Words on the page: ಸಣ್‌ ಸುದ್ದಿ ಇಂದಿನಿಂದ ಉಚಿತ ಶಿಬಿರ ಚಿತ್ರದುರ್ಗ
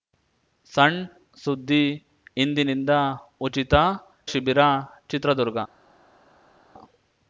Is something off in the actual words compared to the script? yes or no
no